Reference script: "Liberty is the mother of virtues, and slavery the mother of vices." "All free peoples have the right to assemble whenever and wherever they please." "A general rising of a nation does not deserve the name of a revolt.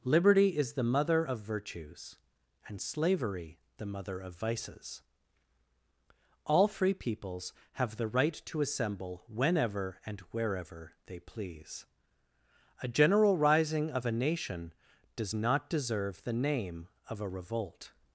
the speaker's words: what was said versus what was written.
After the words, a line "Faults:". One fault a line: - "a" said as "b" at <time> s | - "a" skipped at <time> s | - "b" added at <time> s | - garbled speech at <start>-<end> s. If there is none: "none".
"Liberty is the mother of virtues, and slavery the mother of vices." "All free peoples have the right to assemble whenever and wherever they please." "A general rising of a nation does not deserve the name of a revolt.
Faults:
none